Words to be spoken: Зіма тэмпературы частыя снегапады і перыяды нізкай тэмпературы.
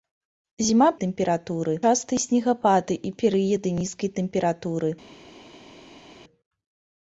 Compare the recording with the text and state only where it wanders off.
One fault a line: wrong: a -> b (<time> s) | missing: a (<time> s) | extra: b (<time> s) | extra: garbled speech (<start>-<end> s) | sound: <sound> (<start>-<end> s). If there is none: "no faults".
no faults